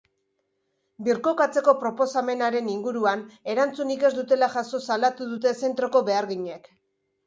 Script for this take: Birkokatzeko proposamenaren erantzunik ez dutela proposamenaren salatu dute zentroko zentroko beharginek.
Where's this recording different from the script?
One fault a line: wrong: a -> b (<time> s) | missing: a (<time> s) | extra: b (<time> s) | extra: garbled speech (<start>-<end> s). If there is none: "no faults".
extra: inguruan (2.8 s)
wrong: proposamenaren -> jaso (4.6 s)
missing: zentroko (6.1 s)